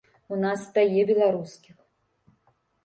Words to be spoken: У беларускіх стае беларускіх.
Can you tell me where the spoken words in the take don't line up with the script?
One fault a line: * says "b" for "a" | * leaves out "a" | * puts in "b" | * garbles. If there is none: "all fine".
* says "нас" for "беларускіх"